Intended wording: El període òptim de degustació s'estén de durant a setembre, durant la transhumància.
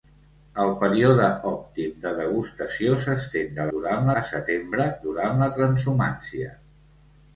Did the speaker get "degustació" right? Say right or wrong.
right